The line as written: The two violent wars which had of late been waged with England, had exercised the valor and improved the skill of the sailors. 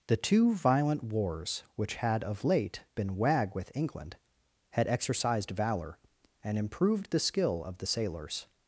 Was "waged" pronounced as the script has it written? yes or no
no